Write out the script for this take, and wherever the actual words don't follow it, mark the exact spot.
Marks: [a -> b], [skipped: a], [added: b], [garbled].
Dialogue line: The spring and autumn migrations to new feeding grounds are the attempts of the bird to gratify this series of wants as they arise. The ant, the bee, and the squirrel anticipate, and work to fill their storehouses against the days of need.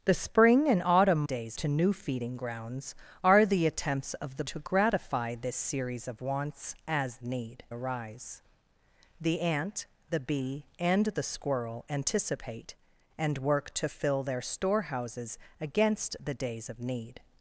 The spring and autumn [migrations -> days] to new feeding grounds are the attempts of the [skipped: bird] to gratify this series of wants as [they -> need] arise. The ant, the bee, and the squirrel anticipate, and work to fill their storehouses against the days of need.